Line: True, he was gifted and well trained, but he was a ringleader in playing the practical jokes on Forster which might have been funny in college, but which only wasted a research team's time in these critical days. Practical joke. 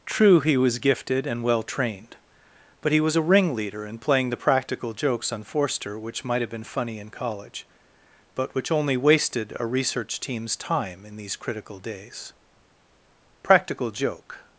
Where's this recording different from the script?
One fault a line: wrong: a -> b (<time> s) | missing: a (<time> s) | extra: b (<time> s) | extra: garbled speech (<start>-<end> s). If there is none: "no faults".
no faults